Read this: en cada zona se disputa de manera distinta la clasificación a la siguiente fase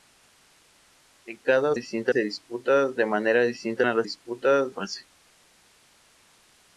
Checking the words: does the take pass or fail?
fail